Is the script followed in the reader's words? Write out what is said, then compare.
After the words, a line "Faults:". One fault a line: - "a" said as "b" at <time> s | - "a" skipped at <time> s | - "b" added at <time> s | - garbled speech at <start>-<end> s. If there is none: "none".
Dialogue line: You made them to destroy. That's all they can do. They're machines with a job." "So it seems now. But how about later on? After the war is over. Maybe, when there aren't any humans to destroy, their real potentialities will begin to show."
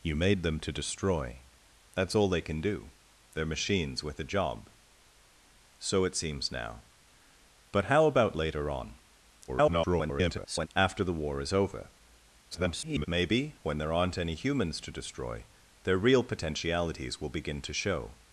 You made them to destroy. That's all they can do. They're machines with a job." "So it seems now. But how about later on? [garbled] After the war is over. [garbled] Maybe, when there aren't any humans to destroy, their real potentialities will begin to show."
Faults:
- garbled speech at 9.5-10.7 s
- garbled speech at 12.5-13.1 s